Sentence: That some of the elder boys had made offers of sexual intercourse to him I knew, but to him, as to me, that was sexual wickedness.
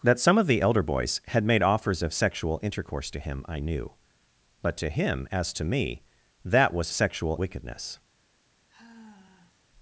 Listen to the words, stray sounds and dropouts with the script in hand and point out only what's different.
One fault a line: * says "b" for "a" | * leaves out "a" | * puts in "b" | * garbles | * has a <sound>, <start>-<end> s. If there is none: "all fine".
* has a sigh, 8.7-9.7 s